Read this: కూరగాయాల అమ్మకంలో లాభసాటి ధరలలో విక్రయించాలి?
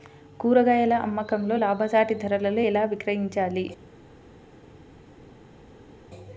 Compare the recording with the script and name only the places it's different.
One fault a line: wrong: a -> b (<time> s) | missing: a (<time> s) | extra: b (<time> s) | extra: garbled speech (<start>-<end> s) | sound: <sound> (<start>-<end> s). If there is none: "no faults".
extra: ఎలా (2.6 s)